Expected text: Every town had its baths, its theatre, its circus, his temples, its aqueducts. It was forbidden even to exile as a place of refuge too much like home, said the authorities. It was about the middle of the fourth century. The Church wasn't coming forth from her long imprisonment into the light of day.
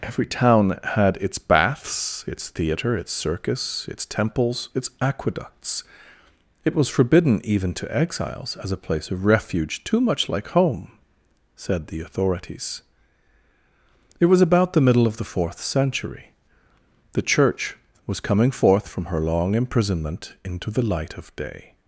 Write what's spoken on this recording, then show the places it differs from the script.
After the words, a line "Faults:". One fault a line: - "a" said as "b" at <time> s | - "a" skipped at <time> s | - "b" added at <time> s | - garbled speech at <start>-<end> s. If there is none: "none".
Every town had its baths, its theatre, its circus, its temples, its aqueducts. It was forbidden even to exiles as a place of refuge too much like home, said the authorities. It was about the middle of the fourth century. The Church was coming forth from her long imprisonment into the light of day.
Faults:
- "his" said as "its" at 3.9 s
- "exile" said as "exiles" at 8.0 s
- "wasn't" said as "was" at 18.1 s